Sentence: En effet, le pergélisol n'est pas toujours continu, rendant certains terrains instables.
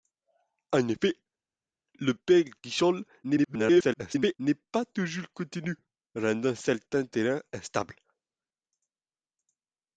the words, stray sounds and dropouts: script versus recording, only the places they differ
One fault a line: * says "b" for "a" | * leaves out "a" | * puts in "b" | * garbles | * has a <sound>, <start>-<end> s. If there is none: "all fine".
* garbles